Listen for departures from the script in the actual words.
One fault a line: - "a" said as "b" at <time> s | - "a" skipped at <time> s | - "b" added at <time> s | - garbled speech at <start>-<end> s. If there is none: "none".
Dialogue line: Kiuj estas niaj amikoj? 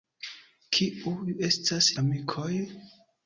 - "niaj" skipped at 1.9 s